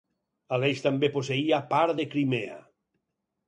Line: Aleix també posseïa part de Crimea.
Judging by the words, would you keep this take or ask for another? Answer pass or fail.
pass